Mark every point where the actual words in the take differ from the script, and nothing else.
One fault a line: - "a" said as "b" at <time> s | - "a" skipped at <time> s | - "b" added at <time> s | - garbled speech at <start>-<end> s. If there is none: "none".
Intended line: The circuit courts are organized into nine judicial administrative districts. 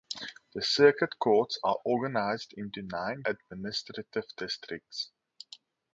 - "judicial" skipped at 3.2 s